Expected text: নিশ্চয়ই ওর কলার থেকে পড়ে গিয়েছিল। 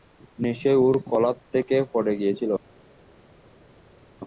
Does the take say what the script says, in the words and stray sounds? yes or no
yes